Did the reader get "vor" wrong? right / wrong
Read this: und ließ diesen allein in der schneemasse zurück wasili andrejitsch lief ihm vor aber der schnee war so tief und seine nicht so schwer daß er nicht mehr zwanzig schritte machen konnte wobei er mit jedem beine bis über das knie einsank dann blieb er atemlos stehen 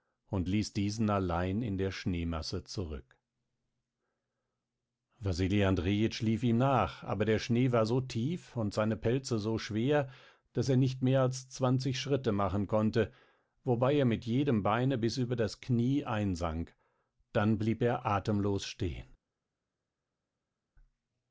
wrong